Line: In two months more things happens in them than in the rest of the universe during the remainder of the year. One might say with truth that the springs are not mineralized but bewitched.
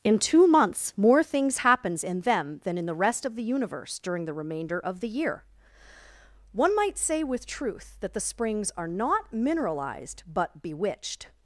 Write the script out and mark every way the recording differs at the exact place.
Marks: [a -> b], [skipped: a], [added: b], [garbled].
In two months more things happens in them than in the rest of the universe during the remainder of the year. One might say with truth that the springs are not mineralized but bewitched.